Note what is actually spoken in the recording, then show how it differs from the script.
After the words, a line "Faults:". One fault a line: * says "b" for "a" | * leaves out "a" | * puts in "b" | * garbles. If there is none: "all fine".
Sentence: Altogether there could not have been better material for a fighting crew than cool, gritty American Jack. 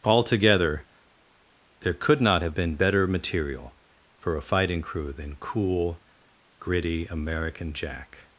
Altogether there could not have been better material for a fighting crew than cool, gritty American Jack.
Faults:
all fine